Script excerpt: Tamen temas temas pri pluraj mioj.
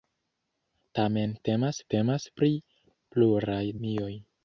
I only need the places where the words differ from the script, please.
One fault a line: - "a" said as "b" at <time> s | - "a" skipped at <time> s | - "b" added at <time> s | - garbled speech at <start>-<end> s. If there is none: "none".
none